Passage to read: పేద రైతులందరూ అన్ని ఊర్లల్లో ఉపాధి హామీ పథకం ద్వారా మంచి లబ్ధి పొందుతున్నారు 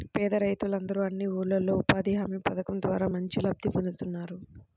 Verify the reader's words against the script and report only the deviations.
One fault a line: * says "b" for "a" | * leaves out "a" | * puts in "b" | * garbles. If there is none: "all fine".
all fine